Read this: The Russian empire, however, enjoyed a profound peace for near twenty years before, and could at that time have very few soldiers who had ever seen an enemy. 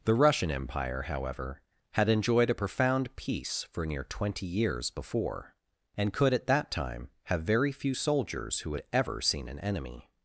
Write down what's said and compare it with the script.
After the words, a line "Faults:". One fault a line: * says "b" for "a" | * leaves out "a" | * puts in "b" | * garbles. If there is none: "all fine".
The Russian empire, however, had enjoyed a profound peace for near twenty years before, and could at that time have very few soldiers who had ever seen an enemy.
Faults:
* puts in "had"